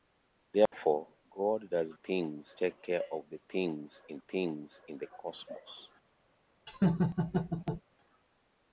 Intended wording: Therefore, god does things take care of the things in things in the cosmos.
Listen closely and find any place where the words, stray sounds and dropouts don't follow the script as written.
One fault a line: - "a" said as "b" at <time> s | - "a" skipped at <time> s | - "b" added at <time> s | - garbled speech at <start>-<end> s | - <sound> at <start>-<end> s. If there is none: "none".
- dropout at 0.7-0.7 s
- laugh at 6.7-7.8 s